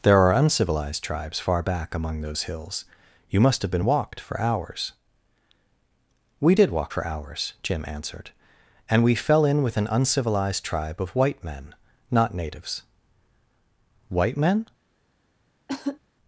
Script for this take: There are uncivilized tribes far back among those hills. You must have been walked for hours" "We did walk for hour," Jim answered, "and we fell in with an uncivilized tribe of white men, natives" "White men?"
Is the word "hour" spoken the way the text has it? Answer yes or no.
no